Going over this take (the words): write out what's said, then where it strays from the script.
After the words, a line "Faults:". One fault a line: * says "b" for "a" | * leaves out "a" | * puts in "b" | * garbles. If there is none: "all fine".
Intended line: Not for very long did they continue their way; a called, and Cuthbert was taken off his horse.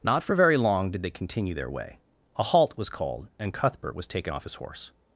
Not for very long did they continue their way; a halt was called, and Cuthbert was taken off his horse.
Faults:
* puts in "halt was"